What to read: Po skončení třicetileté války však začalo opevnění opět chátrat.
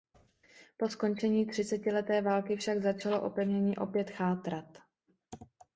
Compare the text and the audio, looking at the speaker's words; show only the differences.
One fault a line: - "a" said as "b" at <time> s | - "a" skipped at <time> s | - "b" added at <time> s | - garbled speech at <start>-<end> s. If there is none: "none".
none